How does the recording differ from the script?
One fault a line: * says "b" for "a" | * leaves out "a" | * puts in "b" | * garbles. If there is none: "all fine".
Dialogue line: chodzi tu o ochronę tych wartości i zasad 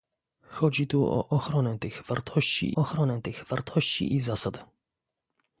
* puts in "ochronę tych wartości"